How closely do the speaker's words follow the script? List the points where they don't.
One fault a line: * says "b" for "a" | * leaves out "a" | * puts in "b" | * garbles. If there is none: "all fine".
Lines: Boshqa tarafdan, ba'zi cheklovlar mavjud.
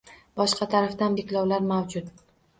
* leaves out "ba'zi"